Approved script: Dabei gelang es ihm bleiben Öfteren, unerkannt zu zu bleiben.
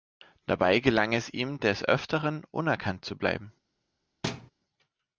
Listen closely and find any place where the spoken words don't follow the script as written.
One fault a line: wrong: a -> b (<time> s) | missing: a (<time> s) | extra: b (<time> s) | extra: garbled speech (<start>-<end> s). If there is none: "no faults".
wrong: bleiben -> des (1.6 s)
missing: zu (3.1 s)